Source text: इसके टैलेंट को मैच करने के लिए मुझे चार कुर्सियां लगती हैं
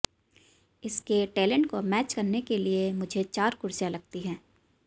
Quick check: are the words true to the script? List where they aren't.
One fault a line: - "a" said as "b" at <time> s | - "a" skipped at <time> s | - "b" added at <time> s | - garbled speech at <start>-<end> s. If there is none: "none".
none